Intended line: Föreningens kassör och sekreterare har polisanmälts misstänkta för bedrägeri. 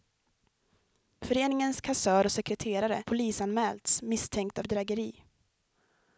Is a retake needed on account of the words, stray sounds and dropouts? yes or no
yes